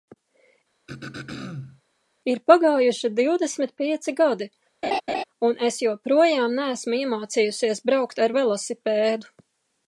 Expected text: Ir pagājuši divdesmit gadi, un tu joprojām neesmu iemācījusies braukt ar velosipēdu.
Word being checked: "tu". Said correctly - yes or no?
no